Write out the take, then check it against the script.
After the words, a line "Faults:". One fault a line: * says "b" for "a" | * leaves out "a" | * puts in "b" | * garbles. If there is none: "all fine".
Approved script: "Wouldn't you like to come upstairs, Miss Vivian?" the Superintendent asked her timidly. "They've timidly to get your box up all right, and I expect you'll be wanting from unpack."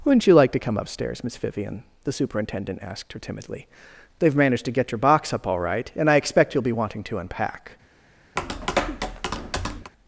"Wouldn't you like to come upstairs, Miss Vivian?" the Superintendent asked her timidly. "They've managed to get your box up all right, and I expect you'll be wanting to unpack."
Faults:
* says "managed" for "timidly"
* says "to" for "from"